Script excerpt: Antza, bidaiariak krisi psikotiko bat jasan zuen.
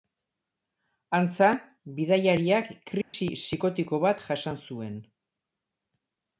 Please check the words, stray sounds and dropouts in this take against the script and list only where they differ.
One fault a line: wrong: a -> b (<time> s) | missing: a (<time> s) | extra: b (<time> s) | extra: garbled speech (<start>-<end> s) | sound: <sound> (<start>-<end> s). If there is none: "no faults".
sound: dropout (3.0-3.1 s)